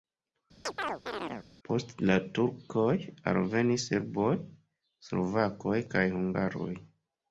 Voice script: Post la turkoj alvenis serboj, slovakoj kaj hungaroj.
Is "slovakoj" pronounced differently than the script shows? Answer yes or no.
no